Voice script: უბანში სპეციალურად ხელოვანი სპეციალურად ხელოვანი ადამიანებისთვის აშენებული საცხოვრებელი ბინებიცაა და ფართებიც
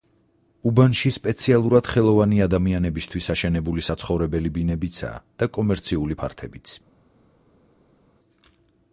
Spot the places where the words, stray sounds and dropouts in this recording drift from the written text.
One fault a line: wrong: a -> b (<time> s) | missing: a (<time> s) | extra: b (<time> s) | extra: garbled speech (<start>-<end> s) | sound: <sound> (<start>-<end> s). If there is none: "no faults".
missing: სპეციალურად ხელოვანი (2.4 s)
extra: კომერციული (5.6 s)